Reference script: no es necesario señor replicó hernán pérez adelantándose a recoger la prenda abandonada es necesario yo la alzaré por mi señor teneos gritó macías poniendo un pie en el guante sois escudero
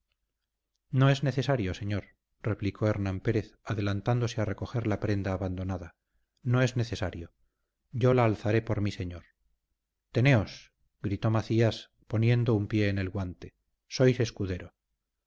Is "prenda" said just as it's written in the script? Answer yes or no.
yes